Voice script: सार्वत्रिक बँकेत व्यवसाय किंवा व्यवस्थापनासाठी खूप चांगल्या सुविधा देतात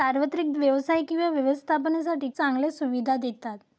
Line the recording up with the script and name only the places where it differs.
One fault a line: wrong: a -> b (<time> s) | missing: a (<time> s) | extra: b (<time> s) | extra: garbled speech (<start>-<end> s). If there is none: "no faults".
missing: बँकेत (0.5 s)
missing: खूप (2.3 s)